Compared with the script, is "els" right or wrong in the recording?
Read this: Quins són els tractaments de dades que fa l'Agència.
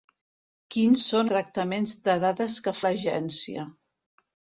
wrong